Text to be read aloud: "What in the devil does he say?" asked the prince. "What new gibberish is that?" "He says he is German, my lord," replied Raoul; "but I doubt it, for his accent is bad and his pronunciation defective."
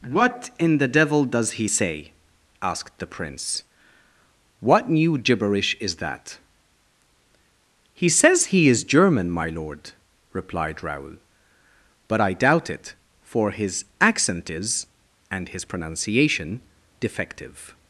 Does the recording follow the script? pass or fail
fail